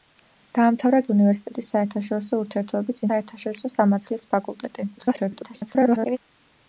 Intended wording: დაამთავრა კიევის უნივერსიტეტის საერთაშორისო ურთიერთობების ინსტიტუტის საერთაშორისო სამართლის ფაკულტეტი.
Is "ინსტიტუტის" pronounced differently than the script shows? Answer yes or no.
yes